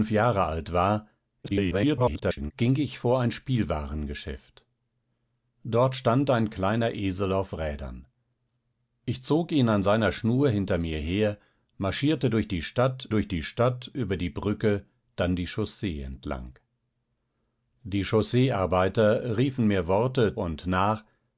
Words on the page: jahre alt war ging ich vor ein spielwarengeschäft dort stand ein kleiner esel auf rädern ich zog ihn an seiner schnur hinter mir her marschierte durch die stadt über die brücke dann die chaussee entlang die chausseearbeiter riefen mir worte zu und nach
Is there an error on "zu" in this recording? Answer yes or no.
yes